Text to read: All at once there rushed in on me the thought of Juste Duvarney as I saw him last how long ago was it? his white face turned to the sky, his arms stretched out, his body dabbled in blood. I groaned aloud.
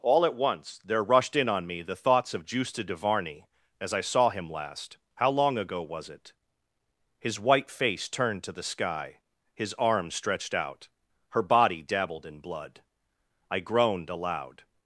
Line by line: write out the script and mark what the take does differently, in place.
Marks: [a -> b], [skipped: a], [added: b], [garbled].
All at once there rushed in on me the [thought -> thoughts] of Juste Duvarney as I saw him last how long ago was it? his white face turned to the sky, his arms stretched out, [his -> her] body dabbled in blood. I groaned aloud.